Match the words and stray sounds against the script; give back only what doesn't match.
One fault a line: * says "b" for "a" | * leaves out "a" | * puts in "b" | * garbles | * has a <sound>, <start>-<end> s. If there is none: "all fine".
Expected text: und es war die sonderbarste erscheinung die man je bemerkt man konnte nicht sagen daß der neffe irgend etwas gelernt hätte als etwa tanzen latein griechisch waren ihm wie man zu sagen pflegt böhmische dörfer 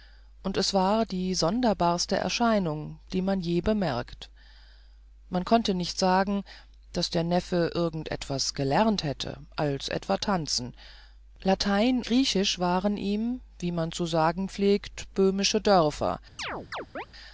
* has a chirp, 16.4-17.1 s